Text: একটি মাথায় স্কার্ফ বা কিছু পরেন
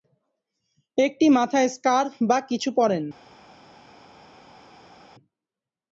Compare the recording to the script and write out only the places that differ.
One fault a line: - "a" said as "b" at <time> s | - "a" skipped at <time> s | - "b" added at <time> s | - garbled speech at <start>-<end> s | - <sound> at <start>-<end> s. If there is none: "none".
none